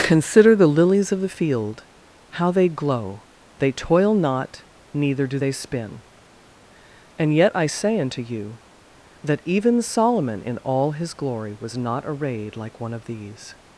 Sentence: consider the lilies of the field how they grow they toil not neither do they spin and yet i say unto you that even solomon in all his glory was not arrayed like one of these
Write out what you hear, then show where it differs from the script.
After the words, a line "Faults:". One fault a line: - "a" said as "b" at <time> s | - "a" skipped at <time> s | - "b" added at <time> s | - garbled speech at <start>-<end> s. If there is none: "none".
consider the lilies of the field how they glow they toil not neither do they spin and yet i say unto you that even solomon in all his glory was not arrayed like one of these
Faults:
- "grow" said as "glow" at 2.7 s